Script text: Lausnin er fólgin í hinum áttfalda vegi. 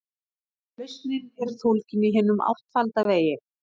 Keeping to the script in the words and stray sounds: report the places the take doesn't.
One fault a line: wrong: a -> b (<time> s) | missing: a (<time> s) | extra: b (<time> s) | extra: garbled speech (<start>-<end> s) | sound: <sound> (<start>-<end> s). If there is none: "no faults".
no faults